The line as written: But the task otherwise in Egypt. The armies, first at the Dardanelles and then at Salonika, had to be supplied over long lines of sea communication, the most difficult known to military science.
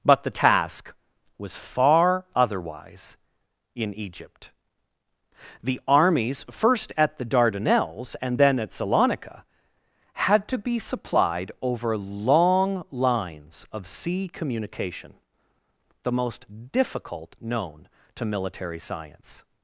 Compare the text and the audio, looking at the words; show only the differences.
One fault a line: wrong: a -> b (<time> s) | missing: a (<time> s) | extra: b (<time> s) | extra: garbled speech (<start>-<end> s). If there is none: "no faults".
extra: was far (1.4 s)